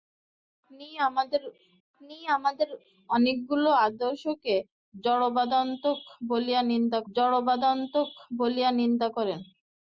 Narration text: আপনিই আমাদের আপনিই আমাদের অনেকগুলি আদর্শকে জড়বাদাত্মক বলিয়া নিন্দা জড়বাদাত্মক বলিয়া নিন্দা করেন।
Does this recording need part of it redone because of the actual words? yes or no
no